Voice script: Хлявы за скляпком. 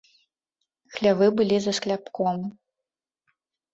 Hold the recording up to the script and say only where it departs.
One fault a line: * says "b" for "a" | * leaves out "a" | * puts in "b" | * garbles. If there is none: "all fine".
* puts in "былі"